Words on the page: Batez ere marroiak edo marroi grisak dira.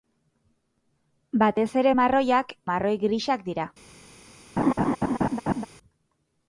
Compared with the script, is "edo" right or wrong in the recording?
wrong